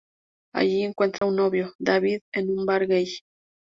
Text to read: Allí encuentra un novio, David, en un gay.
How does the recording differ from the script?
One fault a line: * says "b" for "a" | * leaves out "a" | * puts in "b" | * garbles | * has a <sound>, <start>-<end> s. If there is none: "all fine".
* has a dropout, 1.2-1.2 s
* puts in "bar"